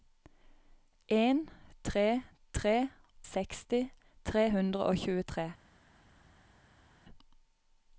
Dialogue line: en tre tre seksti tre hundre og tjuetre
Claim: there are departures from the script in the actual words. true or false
false